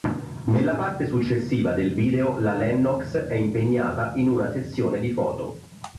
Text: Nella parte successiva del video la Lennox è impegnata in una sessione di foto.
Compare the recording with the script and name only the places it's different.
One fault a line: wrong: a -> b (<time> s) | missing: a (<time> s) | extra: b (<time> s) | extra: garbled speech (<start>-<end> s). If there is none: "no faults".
no faults